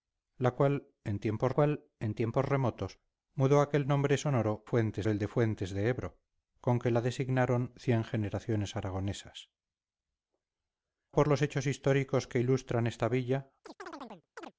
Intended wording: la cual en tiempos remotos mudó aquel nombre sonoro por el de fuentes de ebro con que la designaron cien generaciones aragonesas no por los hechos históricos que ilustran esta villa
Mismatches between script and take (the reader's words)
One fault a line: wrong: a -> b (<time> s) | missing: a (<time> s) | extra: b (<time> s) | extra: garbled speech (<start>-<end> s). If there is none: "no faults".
extra: cual en tiempos (1.5 s)
wrong: por -> fuentes (4.6 s)
missing: no (9.5 s)